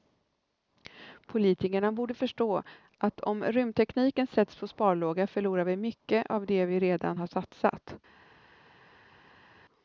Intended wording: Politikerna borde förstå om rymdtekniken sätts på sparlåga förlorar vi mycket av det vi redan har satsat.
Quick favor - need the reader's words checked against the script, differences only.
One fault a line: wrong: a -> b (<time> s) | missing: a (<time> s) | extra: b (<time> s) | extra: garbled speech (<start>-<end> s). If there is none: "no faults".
extra: att (3.0 s)